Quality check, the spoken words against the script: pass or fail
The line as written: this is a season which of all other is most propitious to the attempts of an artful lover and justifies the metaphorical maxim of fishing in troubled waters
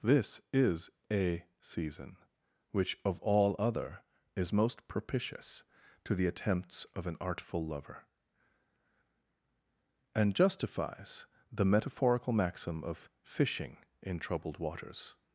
pass